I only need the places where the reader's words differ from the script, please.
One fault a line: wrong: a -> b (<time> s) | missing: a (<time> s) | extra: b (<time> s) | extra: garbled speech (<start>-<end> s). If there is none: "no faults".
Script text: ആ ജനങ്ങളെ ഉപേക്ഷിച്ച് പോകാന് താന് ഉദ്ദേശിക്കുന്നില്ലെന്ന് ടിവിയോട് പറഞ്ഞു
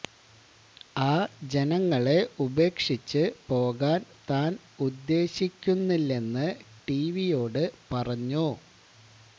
no faults